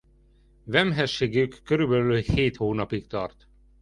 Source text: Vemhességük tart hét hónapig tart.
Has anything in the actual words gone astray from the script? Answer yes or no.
yes